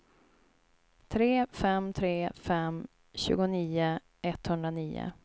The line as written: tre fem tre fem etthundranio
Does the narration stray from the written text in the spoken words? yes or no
yes